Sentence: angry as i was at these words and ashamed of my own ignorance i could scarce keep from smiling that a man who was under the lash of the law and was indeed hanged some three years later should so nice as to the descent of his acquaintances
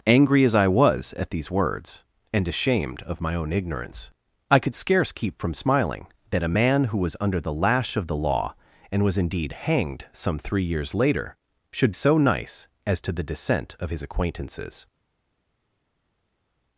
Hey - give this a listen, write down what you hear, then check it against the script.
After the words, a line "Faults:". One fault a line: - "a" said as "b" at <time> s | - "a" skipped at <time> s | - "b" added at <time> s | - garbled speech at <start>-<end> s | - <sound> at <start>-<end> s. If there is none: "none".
angry as i was at these words and ashamed of my own ignorance i could scarce keep from smiling that a man who was under the lash of the law and was indeed hanged some three years later should so nice as to the descent of his acquaintances
Faults:
none